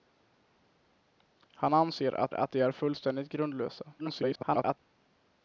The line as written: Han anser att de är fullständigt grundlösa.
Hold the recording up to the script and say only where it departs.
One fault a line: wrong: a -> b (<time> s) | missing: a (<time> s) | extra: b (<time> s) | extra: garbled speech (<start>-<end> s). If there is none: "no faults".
extra: att (2.3 s)
extra: garbled speech (4.0-4.8 s)